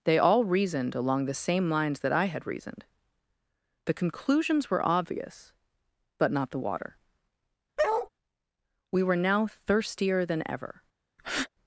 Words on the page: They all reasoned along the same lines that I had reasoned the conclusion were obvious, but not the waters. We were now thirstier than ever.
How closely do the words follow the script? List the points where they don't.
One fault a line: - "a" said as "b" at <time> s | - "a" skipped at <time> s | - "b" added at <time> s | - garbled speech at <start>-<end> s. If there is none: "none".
- "conclusion" said as "conclusions" at 3.9 s
- "waters" said as "water" at 6.6 s